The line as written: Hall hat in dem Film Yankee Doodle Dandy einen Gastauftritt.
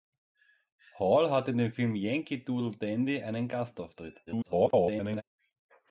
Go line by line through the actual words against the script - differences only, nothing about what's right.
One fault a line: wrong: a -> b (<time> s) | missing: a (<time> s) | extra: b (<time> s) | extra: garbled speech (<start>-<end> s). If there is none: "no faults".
extra: garbled speech (4.3-5.2 s)